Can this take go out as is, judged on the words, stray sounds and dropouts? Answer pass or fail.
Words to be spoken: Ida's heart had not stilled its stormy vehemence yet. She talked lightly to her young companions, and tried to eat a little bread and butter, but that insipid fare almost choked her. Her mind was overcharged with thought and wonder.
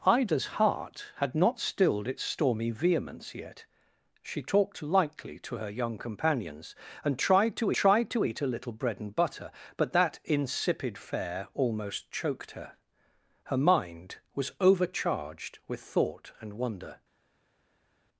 fail